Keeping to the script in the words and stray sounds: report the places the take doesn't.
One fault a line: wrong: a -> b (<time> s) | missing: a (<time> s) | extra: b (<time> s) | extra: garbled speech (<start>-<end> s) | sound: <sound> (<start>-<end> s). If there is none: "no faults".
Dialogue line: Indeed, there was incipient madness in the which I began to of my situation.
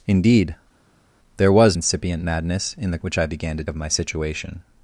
no faults